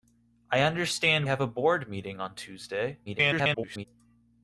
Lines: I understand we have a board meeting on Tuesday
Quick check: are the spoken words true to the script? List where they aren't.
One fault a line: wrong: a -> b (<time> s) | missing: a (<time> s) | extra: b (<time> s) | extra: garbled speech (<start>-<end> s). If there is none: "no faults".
missing: we (1.3 s)
extra: garbled speech (3.1-3.8 s)